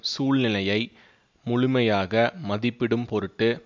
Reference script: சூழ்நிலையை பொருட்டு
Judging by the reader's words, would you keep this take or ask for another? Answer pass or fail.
fail